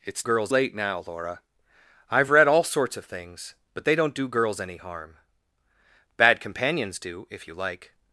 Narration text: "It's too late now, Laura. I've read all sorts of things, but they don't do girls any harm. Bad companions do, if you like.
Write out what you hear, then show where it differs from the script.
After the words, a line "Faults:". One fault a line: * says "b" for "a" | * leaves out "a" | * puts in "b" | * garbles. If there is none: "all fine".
"It's girls late now, Laura. I've read all sorts of things, but they don't do girls any harm. Bad companions do, if you like.
Faults:
* says "girls" for "too"